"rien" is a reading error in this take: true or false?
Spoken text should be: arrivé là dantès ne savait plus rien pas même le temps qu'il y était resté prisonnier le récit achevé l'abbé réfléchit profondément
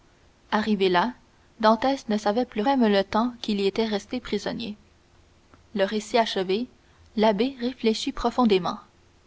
true